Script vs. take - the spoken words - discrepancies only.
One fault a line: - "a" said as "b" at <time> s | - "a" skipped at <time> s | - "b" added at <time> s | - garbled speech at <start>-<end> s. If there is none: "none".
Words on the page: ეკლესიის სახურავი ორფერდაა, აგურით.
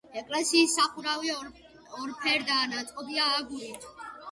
- "ნაწყობია" added at 2.8 s